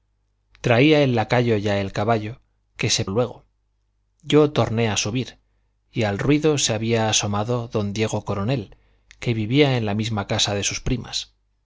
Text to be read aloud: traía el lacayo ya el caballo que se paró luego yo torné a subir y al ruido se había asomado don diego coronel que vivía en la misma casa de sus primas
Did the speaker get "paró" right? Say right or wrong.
wrong